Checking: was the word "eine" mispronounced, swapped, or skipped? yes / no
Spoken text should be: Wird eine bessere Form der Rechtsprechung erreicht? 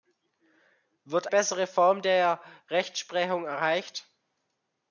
yes